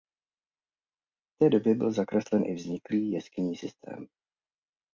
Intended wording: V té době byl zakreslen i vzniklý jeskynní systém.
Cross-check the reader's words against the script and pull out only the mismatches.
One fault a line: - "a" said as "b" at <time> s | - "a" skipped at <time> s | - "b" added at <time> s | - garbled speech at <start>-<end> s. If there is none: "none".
none